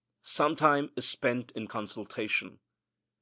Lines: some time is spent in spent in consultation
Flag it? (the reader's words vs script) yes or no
yes